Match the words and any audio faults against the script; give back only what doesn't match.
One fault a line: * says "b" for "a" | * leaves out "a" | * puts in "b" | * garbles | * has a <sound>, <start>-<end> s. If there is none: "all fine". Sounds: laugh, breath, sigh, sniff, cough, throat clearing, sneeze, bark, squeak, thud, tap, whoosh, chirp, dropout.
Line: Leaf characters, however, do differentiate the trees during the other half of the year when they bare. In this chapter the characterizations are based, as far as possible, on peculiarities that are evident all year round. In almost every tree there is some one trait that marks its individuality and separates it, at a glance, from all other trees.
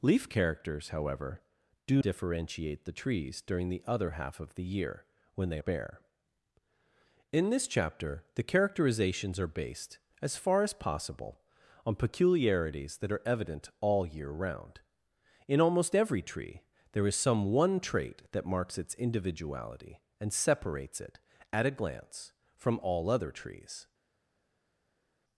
all fine